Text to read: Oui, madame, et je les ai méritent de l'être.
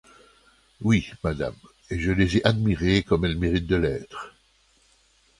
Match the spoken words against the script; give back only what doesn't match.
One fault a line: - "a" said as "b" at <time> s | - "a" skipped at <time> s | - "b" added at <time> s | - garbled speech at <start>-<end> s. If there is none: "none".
- "admirées comme elles" added at 2.4 s